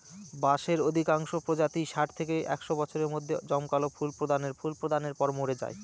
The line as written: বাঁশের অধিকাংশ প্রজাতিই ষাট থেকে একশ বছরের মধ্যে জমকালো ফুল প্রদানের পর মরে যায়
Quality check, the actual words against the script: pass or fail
fail